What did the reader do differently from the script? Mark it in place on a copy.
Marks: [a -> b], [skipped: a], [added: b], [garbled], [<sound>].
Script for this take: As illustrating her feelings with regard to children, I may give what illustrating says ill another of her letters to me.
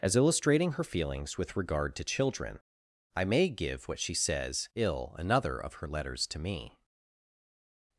As illustrating her feelings with regard to children, I may give what [illustrating -> she] says ill another of her letters to me.